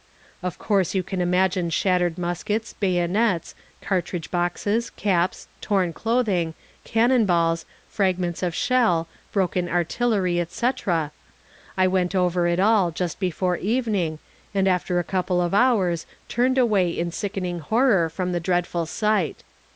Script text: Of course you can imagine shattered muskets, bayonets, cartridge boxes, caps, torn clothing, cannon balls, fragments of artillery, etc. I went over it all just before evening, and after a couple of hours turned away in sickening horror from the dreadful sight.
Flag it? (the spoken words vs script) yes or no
yes